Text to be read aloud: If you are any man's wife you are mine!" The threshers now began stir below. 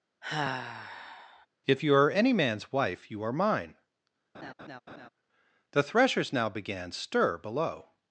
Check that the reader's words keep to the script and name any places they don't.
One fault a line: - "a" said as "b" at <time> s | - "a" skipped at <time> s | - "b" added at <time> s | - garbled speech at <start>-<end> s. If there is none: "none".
none